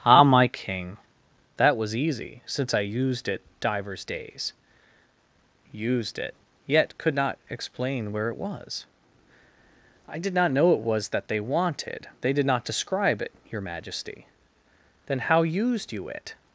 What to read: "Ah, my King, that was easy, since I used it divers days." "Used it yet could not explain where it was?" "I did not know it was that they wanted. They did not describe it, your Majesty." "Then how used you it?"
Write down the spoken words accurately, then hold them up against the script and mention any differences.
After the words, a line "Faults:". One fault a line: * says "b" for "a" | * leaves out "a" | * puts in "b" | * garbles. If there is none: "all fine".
"Ah, my King, that was easy, since I used it divers days." "Used it yet could not explain where it was?" "I did not know it was that they wanted. They did not describe it, your Majesty." "Then how used you it?"
Faults:
all fine